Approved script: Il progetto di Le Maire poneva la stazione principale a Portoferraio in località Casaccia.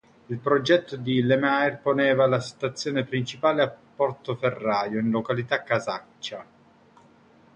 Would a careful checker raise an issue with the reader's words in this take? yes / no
no